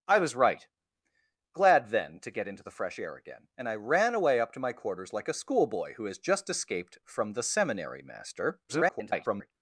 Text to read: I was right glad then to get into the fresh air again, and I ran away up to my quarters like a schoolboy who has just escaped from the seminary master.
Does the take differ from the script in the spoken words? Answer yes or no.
yes